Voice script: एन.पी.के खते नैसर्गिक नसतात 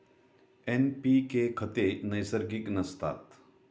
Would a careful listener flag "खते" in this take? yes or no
no